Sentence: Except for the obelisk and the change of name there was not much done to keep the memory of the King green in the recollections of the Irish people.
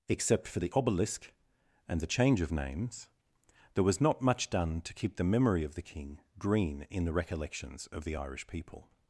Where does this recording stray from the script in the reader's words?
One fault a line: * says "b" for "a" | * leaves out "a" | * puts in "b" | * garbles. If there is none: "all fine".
* says "names" for "name"